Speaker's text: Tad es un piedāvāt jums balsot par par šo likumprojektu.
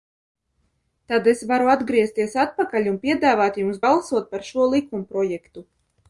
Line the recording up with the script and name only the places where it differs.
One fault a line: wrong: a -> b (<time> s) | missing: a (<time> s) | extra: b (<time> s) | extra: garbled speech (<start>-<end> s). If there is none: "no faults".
extra: varu atgriezties atpakaļ (1.5 s)
missing: par (4.5 s)